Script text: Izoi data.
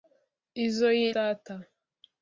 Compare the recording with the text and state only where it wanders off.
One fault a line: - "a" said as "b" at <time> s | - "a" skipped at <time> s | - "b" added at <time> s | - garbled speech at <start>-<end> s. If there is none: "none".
none